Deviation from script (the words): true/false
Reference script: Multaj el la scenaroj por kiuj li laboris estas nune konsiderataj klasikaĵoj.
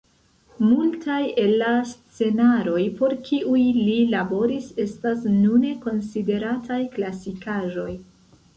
false